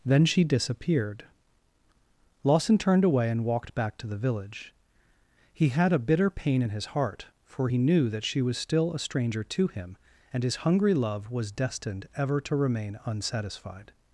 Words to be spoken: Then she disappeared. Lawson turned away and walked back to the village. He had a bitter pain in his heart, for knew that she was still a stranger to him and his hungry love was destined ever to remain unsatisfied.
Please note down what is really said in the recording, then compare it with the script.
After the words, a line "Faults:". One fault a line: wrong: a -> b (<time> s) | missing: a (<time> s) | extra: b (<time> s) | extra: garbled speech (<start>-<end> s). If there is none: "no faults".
Then she disappeared. Lawson turned away and walked back to the village. He had a bitter pain in his heart, for he knew that she was still a stranger to him and his hungry love was destined ever to remain unsatisfied.
Faults:
extra: he (7.6 s)